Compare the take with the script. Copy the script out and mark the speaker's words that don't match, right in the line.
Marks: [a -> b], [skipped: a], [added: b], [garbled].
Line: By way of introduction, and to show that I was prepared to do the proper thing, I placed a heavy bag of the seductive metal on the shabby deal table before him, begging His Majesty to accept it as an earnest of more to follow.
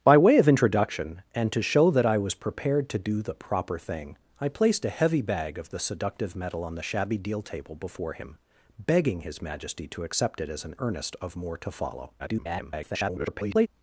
By way of introduction, and to show that I was prepared to do the proper thing, I placed a heavy bag of the seductive metal on the shabby deal table before him, begging His Majesty to accept it as an earnest of more to follow. [garbled]